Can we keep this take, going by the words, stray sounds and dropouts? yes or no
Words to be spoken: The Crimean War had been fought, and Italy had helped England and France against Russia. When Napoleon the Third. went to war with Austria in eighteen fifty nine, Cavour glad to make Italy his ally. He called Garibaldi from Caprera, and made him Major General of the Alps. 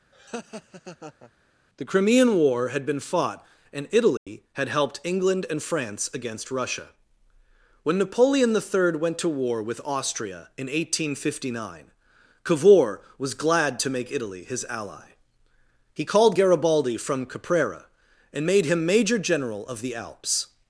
no